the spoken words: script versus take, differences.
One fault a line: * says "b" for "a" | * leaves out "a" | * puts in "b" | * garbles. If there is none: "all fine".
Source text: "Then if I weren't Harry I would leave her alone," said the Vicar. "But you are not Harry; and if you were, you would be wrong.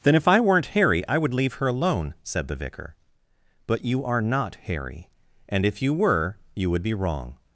all fine